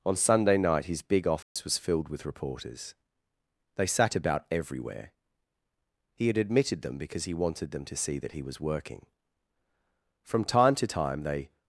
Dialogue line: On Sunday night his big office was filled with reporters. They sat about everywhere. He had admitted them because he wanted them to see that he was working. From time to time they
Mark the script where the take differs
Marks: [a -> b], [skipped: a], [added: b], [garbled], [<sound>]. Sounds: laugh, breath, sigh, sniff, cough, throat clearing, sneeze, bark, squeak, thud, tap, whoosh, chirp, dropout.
On Sunday night his big office [dropout] was filled with reporters. They sat about everywhere. He had admitted them because he wanted them to see that he was working. From time to time they